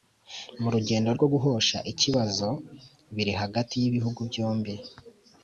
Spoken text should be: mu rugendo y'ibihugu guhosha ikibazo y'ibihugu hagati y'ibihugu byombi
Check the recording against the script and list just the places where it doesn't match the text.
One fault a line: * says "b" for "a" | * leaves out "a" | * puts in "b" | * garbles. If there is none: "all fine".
* says "rwo" for "y'ibihugu"
* says "biri" for "y'ibihugu"